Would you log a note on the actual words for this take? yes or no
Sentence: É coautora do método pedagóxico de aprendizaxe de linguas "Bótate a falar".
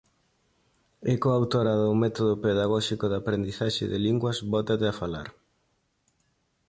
no